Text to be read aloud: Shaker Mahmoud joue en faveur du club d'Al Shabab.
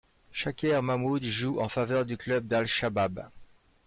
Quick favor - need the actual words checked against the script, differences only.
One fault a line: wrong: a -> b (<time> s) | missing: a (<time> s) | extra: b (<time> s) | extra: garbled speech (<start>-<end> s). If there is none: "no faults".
no faults